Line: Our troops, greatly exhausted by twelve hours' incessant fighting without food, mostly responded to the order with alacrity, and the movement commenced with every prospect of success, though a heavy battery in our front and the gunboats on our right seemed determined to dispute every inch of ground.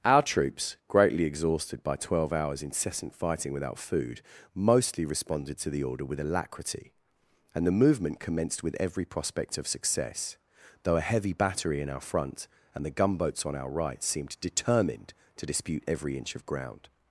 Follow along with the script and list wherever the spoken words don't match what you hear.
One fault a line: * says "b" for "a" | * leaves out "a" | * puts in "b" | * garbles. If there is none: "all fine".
all fine